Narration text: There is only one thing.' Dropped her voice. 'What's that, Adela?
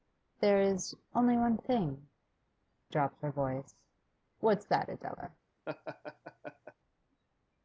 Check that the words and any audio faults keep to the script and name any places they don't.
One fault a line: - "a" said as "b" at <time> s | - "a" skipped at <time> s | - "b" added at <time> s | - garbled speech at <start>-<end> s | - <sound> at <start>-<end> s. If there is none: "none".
- laugh at 5.7-6.7 s